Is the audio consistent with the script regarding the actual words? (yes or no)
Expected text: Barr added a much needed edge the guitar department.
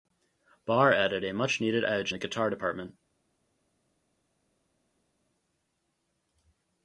yes